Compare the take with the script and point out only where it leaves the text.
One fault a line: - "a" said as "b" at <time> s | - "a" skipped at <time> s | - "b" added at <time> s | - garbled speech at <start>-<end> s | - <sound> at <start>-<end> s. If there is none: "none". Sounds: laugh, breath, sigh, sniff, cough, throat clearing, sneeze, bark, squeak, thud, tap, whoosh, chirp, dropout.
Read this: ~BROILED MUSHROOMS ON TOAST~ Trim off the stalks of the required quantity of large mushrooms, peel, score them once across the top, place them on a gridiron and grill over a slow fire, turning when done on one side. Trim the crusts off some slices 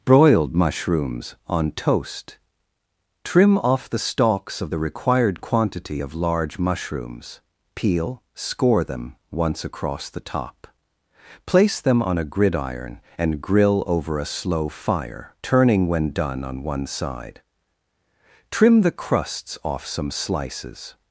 none